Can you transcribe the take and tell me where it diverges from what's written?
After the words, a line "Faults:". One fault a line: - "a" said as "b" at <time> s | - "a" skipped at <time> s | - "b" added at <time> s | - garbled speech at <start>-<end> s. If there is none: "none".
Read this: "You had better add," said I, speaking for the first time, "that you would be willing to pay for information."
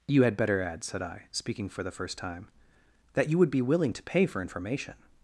"You had better add," said I, speaking for the first time, "that you would be willing to pay for information."
Faults:
none